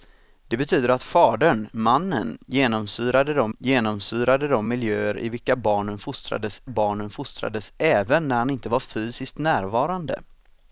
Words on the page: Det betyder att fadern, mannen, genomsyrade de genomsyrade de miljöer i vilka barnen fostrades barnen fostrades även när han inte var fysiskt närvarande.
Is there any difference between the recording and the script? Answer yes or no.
no